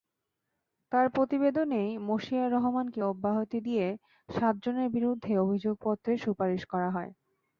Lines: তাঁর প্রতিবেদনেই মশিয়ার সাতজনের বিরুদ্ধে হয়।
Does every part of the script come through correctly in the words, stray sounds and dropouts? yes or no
no